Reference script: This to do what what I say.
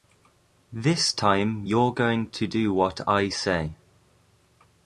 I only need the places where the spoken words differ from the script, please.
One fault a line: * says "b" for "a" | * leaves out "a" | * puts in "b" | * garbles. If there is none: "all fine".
* puts in "time you're going"
* leaves out "what"